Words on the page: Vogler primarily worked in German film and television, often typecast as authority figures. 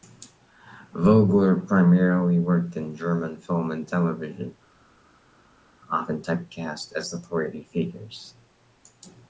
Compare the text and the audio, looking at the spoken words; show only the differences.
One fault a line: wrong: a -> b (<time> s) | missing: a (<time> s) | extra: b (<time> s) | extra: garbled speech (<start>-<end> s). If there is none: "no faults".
no faults